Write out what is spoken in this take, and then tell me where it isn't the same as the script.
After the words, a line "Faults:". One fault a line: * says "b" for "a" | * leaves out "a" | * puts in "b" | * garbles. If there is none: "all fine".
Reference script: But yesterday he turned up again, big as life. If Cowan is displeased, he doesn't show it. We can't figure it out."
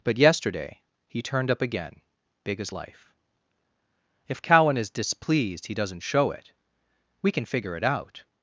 But yesterday he turned up again, big as life. If Cowan is displeased, he doesn't show it. We can figure it out."
Faults:
* says "can" for "can't"